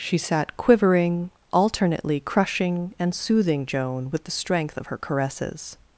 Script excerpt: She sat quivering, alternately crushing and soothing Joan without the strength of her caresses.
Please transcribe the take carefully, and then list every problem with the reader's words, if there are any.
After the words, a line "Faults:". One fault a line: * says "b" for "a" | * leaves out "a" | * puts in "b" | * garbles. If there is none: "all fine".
She sat quivering, alternately crushing and soothing Joan with the strength of her caresses.
Faults:
* says "with" for "without"